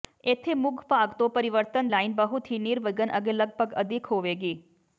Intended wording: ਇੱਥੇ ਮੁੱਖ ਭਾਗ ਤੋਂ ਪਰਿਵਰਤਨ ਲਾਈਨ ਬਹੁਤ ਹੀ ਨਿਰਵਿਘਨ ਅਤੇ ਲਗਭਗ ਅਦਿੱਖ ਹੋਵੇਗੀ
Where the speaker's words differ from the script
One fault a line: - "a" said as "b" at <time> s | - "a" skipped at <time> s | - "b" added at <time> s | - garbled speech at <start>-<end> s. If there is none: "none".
none